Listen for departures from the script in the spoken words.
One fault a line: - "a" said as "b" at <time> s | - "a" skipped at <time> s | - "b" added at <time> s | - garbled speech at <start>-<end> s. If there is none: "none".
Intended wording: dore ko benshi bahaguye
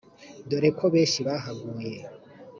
none